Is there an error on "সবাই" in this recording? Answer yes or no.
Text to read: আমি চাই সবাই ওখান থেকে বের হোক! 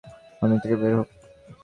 yes